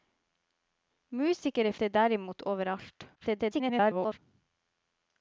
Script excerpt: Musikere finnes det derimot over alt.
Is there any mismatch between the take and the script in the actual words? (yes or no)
yes